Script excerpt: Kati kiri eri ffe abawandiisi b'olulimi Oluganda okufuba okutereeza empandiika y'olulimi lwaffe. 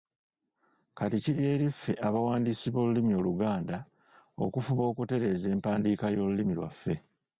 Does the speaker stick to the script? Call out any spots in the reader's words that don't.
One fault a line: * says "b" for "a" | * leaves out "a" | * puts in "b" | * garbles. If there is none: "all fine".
all fine